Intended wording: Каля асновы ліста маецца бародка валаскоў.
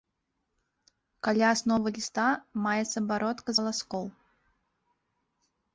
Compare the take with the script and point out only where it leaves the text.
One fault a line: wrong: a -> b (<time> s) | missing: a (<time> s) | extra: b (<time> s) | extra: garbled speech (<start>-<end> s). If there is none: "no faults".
no faults